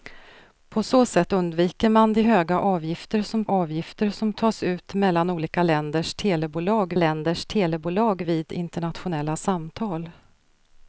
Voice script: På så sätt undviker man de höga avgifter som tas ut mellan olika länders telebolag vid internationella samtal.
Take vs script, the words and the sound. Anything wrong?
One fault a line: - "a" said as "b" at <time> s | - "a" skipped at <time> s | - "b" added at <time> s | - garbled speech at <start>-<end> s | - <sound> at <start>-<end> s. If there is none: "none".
- "avgifter som" added at 3.5 s
- "länders telebolag" added at 7.0 s